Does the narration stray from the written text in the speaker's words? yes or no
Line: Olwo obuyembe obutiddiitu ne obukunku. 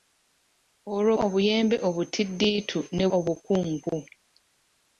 no